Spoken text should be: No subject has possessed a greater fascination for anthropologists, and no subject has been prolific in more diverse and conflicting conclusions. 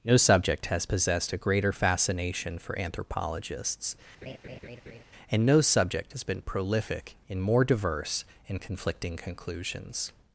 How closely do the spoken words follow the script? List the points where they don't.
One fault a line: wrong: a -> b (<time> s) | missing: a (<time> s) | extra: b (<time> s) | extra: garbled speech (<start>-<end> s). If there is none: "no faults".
no faults